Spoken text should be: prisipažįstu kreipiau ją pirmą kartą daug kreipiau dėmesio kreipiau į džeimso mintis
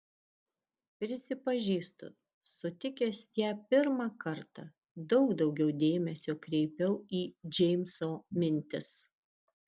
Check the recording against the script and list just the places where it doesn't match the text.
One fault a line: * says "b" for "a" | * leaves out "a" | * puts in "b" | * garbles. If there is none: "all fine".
* says "sutikęs" for "kreipiau"
* says "daugiau" for "kreipiau"